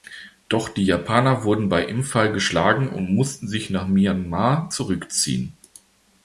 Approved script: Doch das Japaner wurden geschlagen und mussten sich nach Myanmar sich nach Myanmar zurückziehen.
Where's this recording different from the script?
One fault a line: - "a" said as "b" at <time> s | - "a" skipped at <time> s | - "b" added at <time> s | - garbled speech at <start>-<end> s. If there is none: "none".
- "das" said as "die" at 0.7 s
- "bei Imphal" added at 1.7 s
- "sich nach Myanmar" skipped at 4.7 s